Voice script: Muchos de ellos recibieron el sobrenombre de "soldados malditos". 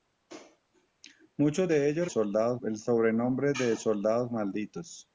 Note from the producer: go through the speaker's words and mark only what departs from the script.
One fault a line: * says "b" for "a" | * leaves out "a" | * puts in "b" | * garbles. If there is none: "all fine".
* says "soldados" for "recibieron"